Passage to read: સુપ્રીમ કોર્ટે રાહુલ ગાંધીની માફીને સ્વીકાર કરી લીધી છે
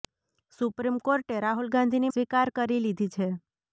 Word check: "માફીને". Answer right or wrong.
wrong